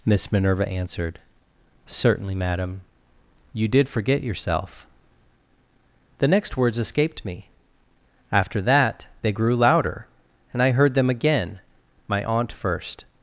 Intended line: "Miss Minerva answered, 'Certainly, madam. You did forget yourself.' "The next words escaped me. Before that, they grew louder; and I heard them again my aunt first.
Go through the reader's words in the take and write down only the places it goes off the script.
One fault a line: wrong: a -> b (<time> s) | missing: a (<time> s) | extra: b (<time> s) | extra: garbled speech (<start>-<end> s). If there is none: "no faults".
wrong: Before -> After (8.3 s)